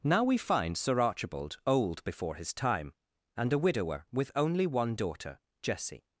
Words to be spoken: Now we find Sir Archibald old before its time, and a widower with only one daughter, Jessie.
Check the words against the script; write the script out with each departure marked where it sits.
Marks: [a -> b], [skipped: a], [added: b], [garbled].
Now we find Sir Archibald old before [its -> his] time, and a widower with only one daughter, Jessie.